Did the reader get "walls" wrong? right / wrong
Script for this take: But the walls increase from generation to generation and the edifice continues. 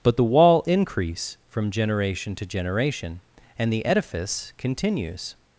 wrong